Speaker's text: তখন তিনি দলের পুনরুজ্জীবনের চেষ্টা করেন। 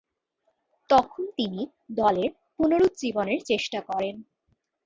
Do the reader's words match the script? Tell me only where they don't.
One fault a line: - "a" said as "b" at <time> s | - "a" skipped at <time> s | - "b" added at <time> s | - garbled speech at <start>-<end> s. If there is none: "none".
none